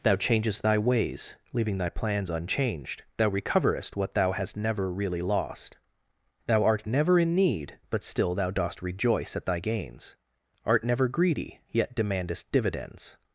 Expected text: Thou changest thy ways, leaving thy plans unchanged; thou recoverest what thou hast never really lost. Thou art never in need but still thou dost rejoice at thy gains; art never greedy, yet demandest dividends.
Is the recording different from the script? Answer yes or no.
no